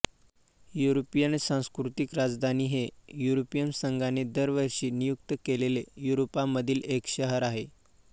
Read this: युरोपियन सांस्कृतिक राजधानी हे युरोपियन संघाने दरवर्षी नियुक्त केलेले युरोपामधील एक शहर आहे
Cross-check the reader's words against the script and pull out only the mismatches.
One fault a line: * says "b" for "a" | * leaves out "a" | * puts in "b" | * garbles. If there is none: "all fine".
all fine